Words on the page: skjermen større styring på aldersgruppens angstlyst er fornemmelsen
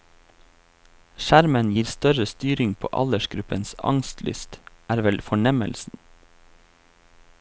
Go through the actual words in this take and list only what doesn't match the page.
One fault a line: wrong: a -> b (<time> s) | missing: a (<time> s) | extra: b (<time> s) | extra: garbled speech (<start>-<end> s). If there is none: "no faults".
extra: gir (1.8 s)
extra: vel (5.1 s)